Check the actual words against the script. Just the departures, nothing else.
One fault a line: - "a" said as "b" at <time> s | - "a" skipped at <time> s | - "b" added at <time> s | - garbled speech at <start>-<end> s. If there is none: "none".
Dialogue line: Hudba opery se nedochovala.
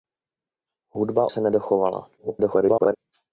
- "opery" skipped at 1.3 s
- garbled speech at 2.2-3.0 s